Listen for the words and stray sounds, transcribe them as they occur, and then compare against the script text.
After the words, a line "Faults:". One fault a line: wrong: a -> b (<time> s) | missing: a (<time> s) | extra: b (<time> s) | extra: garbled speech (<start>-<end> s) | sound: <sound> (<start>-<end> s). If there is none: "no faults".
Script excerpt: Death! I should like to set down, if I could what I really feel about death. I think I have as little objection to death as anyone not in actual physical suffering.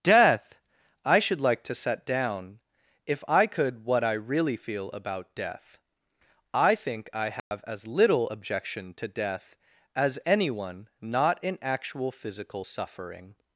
Death! I should like to set down, if I could what I really feel about death. I think I have as little objection to death as anyone not in actual physical suffering.
Faults:
sound: dropout (7.4-7.5 s)